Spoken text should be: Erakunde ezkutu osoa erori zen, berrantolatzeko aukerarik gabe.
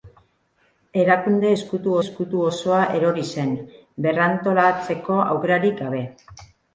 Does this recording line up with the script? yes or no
no